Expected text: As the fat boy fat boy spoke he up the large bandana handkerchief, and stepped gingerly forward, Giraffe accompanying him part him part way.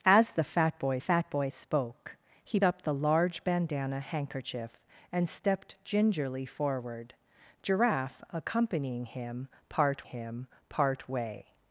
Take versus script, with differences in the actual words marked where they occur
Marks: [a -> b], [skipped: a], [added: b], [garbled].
As the fat boy fat boy spoke he up the large bandana handkerchief, and stepped gingerly forward, Giraffe accompanying him part him part way.